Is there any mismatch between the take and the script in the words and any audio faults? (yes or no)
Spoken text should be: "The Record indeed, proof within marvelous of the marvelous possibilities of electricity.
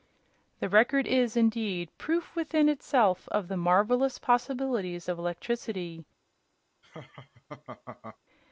yes